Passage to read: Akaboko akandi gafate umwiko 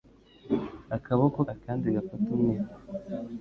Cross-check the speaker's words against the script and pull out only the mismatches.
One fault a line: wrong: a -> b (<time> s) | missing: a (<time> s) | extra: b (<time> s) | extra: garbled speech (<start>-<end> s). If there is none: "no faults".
no faults